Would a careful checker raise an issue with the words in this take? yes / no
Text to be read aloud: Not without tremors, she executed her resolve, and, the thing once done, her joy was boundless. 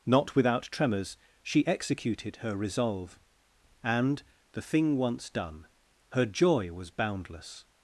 no